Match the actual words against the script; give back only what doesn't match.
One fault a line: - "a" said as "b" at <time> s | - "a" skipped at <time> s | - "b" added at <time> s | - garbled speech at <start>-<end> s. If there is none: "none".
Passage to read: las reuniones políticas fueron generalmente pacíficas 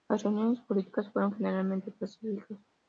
none